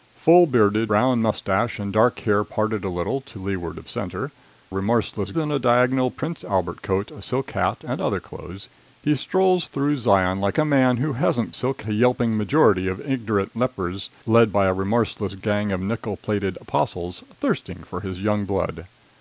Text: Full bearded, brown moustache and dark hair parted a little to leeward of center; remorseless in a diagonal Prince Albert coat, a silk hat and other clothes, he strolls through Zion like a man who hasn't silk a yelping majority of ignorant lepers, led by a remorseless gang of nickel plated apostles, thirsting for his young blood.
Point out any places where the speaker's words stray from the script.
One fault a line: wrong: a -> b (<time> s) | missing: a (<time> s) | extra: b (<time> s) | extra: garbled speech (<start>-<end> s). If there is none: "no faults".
no faults